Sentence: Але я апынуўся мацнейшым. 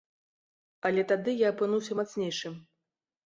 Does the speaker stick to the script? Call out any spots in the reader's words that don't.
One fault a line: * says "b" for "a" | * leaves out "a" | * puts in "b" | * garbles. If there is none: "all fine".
* puts in "тады"